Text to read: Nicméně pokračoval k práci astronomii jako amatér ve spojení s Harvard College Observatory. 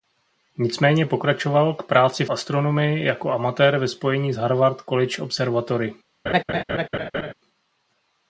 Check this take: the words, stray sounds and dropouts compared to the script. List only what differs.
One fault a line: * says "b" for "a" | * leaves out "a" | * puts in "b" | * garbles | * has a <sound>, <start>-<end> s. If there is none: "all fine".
* has a laugh, 6.3-7.3 s